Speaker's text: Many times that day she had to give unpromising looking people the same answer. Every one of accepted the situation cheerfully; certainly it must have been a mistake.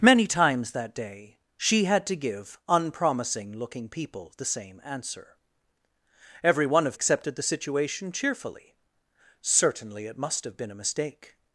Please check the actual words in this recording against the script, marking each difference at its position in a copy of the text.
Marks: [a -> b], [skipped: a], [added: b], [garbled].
Many times that day she had to give unpromising looking people the same answer. Every one of accepted the situation cheerfully; certainly it must have been a mistake.